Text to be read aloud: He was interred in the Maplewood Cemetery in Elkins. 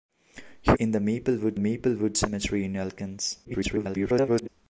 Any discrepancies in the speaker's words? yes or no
yes